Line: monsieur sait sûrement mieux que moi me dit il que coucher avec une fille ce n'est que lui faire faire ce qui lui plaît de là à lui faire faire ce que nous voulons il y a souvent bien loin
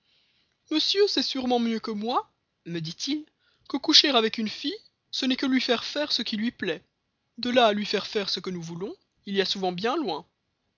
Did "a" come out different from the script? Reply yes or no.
no